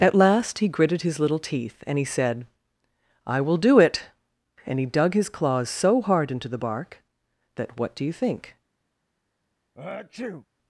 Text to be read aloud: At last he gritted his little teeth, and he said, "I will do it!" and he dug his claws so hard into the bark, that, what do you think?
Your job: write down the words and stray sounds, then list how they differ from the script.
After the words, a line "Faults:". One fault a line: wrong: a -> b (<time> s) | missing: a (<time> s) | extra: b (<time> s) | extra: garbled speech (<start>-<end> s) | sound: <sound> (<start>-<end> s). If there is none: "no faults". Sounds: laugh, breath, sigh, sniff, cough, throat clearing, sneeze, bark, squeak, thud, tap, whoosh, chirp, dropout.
At last he gritted his little teeth, and he said, "I will do it!" and he dug his claws so hard into the bark, that, what do you think?
Faults:
sound: sneeze (9.7-10.5 s)